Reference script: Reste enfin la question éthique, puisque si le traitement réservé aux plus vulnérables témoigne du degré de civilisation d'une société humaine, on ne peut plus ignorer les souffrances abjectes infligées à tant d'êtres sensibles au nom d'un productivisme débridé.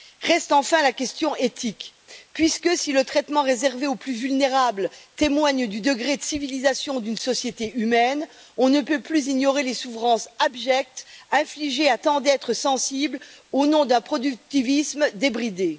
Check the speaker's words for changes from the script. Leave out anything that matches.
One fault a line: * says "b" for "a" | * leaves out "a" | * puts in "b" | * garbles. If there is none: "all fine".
all fine